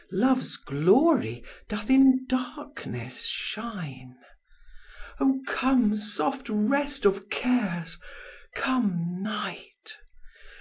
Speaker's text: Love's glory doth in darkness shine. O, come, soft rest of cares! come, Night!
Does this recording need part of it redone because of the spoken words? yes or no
no